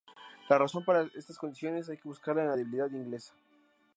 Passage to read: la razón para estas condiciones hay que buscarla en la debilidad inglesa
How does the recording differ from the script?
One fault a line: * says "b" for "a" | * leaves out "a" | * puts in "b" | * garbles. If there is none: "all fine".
all fine